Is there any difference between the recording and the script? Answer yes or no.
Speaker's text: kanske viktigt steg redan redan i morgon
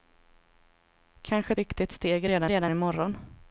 no